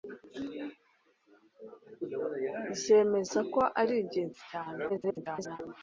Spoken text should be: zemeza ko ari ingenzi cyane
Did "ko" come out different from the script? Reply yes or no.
no